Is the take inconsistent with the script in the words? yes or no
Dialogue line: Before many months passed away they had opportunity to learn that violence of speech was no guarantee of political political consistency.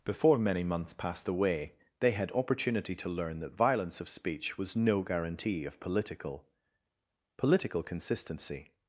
no